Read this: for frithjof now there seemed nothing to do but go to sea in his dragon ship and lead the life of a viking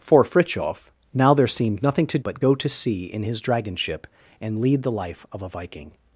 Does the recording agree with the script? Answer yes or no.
no